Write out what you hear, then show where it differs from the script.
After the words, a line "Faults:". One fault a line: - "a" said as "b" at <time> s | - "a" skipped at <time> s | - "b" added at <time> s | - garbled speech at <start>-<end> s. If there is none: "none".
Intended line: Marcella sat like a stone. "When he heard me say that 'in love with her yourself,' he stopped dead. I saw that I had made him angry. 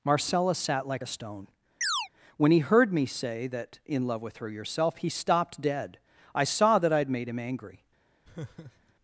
Marcella sat like a stone. "When he heard me say that 'in love with her yourself,' he stopped dead. I saw that I had made him angry.
Faults:
none